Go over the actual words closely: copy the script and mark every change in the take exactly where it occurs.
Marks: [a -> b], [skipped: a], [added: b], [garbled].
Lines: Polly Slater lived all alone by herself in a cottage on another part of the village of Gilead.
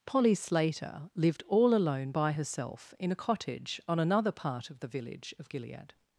Polly Slater lived all alone by herself in a cottage on another part of the village of Gilead.